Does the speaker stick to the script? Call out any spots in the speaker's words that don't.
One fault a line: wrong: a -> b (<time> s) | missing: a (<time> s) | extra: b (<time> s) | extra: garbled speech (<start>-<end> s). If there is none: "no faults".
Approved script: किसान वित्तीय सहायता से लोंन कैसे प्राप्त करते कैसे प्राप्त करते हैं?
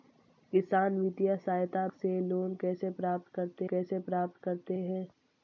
no faults